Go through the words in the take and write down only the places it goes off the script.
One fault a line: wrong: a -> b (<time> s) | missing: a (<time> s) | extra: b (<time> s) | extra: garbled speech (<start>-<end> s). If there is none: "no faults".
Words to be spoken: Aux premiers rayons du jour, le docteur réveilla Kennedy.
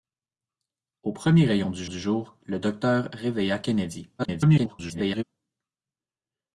extra: du (1.8 s)
extra: garbled speech (4.2-5.2 s)